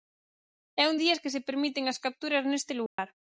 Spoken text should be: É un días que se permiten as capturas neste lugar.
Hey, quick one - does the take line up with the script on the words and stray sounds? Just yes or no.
no